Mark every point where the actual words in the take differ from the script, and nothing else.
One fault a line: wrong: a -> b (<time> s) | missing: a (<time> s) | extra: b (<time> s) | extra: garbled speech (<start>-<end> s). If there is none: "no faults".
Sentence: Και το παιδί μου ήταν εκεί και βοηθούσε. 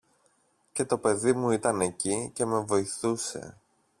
extra: με (2.5 s)